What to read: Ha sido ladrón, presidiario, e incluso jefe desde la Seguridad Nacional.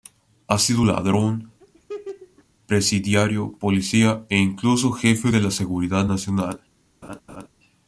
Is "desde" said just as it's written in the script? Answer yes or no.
no